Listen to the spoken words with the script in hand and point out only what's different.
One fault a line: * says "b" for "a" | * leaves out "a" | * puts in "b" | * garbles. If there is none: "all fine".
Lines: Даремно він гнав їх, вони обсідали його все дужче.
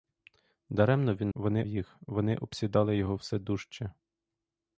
* says "вони" for "гнав"